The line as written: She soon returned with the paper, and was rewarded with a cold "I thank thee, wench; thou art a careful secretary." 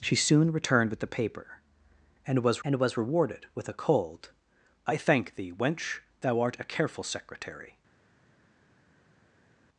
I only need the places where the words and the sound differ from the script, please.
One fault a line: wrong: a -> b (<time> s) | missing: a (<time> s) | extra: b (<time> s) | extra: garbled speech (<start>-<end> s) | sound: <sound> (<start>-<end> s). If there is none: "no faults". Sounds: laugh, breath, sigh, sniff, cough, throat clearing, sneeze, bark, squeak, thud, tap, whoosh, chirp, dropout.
extra: and was (2.6 s)